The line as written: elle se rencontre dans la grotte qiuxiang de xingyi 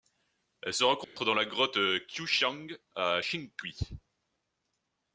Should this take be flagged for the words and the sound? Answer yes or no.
yes